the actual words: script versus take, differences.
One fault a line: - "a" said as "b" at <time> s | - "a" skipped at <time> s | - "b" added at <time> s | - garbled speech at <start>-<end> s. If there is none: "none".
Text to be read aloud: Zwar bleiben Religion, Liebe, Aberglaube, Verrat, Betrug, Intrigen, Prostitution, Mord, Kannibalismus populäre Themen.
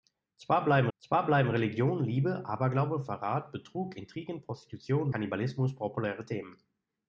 - "zwar bleiben" added at 1.0 s
- "Mord" skipped at 5.1 s